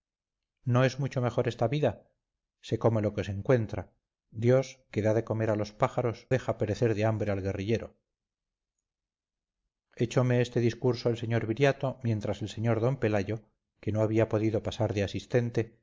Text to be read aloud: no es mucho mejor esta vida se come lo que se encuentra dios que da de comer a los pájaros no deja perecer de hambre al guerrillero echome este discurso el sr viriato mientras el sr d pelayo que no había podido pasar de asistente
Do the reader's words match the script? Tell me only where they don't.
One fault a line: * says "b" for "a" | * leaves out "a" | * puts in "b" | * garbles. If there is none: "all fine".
* leaves out "no"